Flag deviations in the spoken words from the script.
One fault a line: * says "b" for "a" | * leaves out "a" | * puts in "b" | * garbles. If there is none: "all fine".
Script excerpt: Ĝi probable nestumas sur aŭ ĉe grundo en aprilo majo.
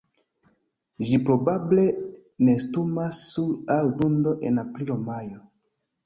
* leaves out "ĉe"